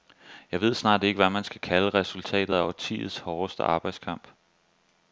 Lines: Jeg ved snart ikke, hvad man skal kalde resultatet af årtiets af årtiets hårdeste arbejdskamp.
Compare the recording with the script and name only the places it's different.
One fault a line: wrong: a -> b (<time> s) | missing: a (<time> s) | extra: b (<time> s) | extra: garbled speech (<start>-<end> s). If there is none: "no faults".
missing: af årtiets (3.2 s)